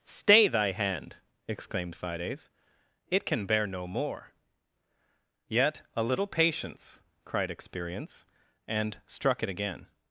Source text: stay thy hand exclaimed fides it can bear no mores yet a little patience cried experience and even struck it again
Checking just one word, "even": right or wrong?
wrong